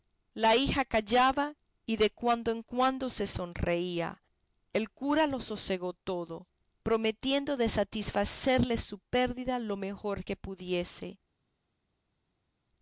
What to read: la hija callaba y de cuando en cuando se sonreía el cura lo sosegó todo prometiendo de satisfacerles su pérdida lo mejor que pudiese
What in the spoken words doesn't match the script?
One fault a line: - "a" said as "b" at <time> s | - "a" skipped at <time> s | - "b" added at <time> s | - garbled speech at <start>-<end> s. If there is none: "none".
none